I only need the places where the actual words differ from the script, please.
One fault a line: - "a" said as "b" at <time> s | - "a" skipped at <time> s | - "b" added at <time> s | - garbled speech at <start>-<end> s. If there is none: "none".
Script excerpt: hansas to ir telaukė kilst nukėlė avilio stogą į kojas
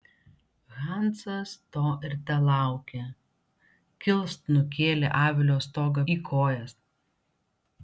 none